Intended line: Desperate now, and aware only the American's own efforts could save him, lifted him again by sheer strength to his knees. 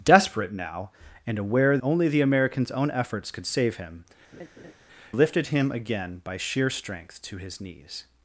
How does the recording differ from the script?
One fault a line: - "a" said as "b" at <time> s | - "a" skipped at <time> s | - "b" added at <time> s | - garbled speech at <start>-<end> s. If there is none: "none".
none